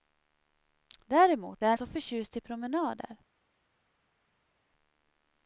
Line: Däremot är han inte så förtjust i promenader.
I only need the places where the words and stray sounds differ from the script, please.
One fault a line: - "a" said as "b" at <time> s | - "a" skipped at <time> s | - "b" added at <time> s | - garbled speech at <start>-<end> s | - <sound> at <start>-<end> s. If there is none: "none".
- "inte" skipped at 1.8 s